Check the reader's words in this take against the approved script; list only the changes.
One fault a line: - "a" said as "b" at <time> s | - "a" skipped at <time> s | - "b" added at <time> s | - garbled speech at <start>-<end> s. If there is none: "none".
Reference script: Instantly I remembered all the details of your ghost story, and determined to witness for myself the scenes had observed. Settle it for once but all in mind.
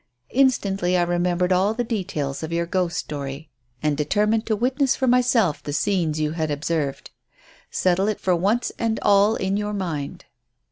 - "you" added at 6.2 s
- "but" said as "and" at 8.8 s
- "your" added at 9.6 s